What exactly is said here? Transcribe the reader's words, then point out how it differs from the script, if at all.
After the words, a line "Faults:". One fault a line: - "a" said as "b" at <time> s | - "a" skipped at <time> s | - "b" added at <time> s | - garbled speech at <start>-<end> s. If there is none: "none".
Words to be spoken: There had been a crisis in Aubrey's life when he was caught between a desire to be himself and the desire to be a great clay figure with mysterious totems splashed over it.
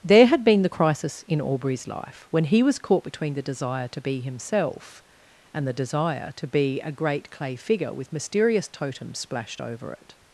There had been the crisis in Aubrey's life when he was caught between the desire to be himself and the desire to be a great clay figure with mysterious totems splashed over it.
Faults:
- "a" said as "the" at 0.6 s
- "a" said as "the" at 3.3 s